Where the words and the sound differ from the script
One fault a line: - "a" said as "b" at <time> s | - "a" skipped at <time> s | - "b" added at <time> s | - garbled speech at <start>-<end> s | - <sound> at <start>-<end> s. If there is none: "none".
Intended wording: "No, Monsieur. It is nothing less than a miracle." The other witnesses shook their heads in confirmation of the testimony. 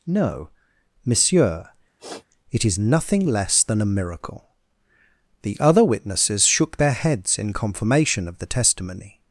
- sniff at 2.0-2.3 s